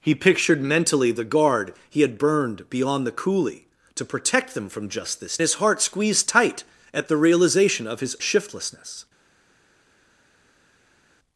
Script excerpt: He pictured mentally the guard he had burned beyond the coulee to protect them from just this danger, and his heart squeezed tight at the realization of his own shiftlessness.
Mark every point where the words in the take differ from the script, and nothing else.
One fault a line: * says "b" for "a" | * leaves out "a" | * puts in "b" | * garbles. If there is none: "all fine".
* leaves out "danger and"
* leaves out "own"